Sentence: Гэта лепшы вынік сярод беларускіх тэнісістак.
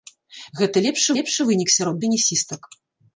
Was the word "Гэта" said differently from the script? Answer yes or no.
no